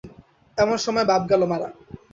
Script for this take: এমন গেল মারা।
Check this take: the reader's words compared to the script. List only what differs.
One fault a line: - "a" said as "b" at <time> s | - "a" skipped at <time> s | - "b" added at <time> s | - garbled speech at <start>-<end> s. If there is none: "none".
- "সময় বাপ" added at 0.8 s